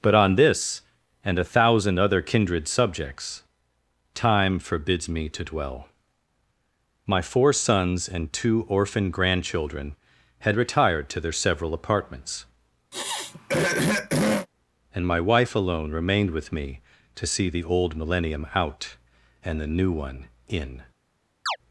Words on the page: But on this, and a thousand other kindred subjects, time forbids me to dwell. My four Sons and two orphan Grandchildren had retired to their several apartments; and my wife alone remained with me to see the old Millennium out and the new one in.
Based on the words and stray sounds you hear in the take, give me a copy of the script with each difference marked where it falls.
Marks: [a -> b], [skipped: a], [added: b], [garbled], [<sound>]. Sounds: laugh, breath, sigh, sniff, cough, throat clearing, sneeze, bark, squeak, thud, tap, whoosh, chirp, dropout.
But on this, and a thousand other kindred subjects, time forbids me to dwell. My four Sons and two orphan Grandchildren had retired to their several apartments; [throat clearing] and my wife alone remained with me to see the old Millennium out and the new one in. [chirp]